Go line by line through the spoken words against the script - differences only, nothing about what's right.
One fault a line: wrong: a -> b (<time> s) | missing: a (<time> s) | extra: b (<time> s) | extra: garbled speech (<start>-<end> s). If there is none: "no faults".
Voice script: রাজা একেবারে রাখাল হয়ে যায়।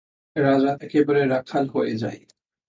no faults